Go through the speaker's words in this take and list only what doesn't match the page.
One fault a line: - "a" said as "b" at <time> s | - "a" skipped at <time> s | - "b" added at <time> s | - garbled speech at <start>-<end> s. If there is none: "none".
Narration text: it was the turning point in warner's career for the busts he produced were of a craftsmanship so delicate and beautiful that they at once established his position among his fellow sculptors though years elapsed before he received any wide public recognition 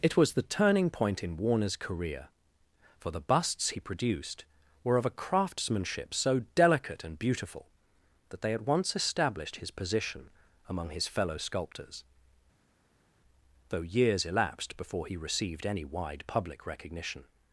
none